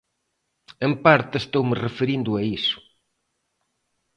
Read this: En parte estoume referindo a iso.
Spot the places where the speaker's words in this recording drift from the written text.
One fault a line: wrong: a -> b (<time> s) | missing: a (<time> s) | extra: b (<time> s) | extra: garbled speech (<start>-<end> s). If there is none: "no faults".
no faults